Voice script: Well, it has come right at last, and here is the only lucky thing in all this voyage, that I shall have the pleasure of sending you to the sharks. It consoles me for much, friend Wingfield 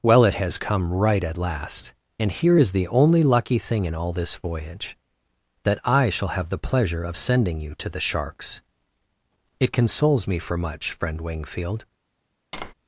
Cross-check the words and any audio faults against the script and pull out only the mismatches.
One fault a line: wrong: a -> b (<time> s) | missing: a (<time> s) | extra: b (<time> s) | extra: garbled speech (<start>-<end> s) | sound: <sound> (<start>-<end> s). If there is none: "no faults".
sound: tap (12.5-12.7 s)